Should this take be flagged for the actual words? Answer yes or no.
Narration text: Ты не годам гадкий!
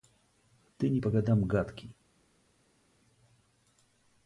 yes